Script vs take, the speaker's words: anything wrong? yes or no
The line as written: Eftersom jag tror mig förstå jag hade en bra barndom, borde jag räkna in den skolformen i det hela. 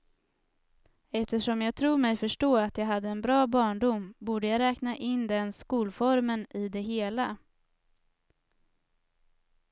yes